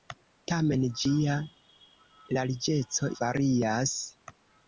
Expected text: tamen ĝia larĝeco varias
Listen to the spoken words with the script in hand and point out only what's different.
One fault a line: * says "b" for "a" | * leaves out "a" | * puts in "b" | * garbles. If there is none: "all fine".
all fine